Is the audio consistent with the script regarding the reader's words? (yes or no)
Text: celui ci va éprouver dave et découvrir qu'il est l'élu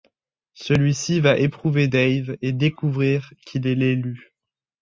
yes